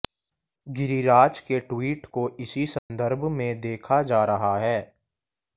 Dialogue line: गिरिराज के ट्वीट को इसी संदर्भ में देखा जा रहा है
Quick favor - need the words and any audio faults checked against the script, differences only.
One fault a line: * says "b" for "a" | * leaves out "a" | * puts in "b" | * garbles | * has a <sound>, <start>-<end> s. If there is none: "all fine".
* has a dropout, 2.8-2.9 s